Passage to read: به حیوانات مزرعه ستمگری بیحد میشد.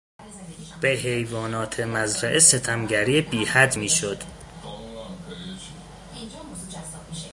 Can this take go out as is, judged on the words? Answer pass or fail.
pass